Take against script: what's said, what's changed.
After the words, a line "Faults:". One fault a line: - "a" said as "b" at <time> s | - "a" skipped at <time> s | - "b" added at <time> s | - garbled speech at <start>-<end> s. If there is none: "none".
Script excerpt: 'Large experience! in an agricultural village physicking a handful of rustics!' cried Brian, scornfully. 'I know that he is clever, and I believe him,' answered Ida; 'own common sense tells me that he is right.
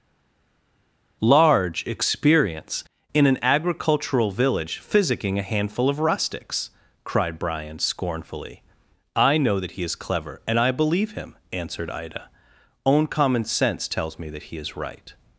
'Large experience! in an agricultural village physicking a handful of rustics!' cried Brian, scornfully. 'I know that he is clever, and I believe him,' answered Ida; 'own common sense tells me that he is right.
Faults:
none